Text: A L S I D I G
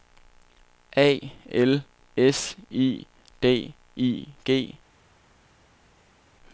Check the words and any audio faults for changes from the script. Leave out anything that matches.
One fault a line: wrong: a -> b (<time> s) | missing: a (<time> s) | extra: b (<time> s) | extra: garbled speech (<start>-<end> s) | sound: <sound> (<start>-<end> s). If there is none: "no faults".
no faults